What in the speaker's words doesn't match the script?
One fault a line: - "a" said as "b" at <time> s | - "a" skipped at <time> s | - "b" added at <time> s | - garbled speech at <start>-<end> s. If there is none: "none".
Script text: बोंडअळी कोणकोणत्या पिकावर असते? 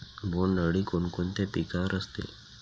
none